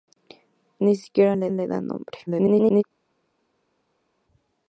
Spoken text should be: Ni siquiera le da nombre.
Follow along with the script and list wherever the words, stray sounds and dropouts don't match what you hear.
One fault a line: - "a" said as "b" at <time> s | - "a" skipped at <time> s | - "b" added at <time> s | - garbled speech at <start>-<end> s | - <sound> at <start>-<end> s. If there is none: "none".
- "le" added at 1.5 s
- garbled speech at 2.3-2.8 s